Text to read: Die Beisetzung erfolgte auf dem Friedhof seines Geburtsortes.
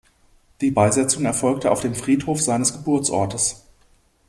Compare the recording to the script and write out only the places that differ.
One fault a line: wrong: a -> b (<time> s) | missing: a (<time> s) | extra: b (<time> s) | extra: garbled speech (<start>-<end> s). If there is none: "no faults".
no faults